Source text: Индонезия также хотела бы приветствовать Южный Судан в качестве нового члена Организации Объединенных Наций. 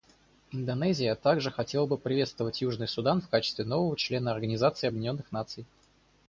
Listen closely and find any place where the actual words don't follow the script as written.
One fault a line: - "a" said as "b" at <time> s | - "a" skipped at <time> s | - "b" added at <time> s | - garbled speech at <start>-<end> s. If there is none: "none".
none